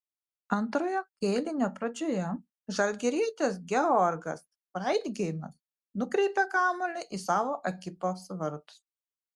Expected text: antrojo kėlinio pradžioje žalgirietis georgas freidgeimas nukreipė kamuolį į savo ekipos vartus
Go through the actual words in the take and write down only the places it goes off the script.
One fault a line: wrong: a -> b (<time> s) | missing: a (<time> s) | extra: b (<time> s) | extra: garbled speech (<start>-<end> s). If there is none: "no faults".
no faults